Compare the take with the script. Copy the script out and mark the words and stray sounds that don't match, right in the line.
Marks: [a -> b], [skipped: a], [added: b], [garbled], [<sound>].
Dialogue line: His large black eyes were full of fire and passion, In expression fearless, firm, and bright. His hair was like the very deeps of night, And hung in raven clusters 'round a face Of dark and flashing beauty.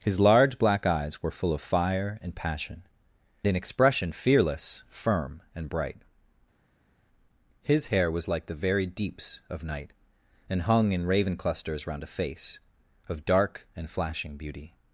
His large black eyes were full of fire and passion, In expression fearless, firm, and bright. His hair was like the very deeps of night, And hung in raven clusters 'round a face Of dark and flashing beauty.